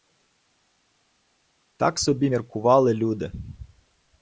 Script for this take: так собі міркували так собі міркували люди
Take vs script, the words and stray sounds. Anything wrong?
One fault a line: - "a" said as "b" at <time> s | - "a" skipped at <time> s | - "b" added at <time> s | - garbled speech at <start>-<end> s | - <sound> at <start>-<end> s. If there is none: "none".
- "так собі міркували" skipped at 2.9 s